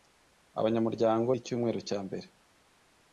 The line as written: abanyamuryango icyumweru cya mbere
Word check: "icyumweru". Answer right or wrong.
right